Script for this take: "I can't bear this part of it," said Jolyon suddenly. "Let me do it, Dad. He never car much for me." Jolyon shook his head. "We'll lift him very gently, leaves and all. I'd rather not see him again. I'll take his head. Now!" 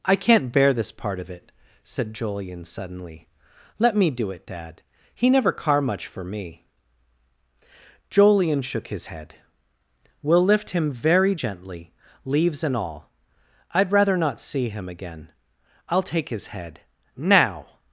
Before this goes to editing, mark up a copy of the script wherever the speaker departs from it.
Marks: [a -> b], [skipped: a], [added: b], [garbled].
"I can't bear this part of it," said Jolyon suddenly. "Let me do it, Dad. He never car much for me." Jolyon shook his head. "We'll lift him very gently, leaves and all. I'd rather not see him again. I'll take his head. Now!"